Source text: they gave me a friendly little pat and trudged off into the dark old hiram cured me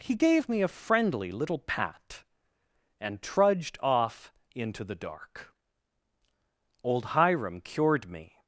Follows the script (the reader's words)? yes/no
no